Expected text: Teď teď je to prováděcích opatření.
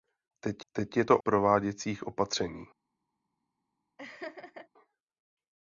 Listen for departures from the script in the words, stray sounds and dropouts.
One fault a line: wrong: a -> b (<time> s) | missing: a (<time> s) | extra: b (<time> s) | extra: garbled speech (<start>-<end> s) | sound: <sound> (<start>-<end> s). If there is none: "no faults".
sound: laugh (4.0-4.7 s)